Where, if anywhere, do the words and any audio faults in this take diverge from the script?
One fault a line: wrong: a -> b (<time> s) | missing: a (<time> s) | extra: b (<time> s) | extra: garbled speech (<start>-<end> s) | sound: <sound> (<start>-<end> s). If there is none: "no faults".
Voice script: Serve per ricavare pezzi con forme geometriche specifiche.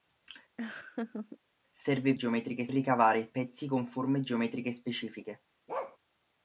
sound: laugh (0.6-1.4 s)
wrong: per -> geometriche (2.1 s)
sound: bark (5.7-6.0 s)